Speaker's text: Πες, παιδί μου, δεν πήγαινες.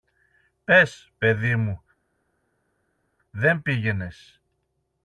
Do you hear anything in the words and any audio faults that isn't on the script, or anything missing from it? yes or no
no